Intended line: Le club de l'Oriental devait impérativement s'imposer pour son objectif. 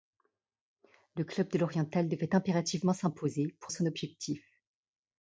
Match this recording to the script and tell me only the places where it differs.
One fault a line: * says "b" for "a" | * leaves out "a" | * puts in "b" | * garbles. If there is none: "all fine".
all fine